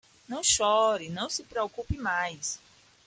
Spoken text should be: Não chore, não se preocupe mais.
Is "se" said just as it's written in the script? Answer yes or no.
yes